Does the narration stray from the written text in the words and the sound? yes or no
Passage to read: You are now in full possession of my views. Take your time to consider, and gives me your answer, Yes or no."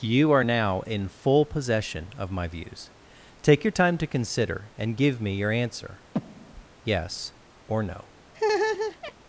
yes